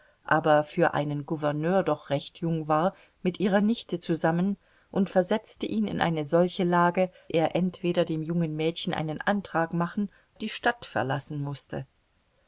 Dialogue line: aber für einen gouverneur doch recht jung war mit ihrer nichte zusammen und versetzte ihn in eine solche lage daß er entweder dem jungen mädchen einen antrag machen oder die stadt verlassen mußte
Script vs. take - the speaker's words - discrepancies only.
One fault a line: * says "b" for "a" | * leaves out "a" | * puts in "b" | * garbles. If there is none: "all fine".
* leaves out "daß"
* leaves out "oder"